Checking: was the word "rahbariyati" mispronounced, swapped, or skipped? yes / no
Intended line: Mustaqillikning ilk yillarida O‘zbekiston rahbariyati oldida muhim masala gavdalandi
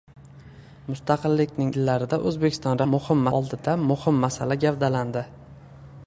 yes